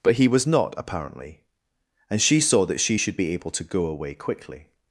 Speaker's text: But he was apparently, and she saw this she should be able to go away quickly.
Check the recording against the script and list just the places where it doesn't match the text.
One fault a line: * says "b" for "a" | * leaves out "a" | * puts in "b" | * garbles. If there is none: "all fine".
* puts in "not"
* says "that" for "this"